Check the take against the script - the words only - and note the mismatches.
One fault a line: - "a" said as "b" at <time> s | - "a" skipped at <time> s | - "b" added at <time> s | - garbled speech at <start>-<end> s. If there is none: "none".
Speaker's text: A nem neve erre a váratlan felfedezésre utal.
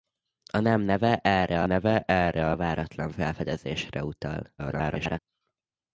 - "neve erre" added at 1.6 s
- garbled speech at 4.6-5.2 s